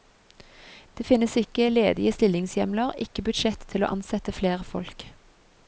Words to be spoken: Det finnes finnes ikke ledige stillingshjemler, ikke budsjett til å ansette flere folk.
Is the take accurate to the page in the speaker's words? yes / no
no